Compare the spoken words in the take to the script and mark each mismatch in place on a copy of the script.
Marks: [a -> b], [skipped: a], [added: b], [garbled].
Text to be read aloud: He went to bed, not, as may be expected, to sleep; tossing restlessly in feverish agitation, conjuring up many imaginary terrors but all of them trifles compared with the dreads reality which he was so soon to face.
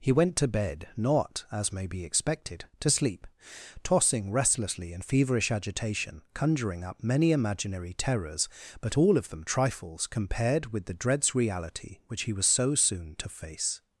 He went to bed, not, as may be expected, to sleep; tossing restlessly in feverish agitation, conjuring up many imaginary terrors but all of them trifles compared with the dreads reality which he was so soon to face.